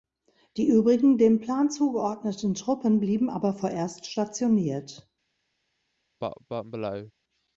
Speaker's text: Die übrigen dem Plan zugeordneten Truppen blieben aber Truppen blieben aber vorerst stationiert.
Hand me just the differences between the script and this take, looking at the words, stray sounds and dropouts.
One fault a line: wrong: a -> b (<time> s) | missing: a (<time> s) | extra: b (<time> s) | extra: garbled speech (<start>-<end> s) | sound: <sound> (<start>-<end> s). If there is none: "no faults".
missing: Truppen blieben aber (3.5 s)
sound: cough (6.2-7.1 s)